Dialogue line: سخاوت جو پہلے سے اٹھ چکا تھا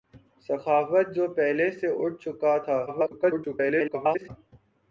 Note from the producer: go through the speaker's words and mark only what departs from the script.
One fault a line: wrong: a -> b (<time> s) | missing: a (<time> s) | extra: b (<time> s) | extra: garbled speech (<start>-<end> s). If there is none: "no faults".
extra: garbled speech (2.9-4.3 s)